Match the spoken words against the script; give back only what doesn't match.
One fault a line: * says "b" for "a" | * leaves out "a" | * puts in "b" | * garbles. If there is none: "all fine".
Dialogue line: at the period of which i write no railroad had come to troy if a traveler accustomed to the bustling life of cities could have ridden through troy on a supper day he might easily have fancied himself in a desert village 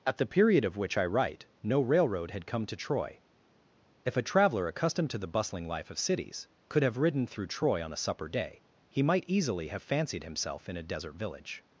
all fine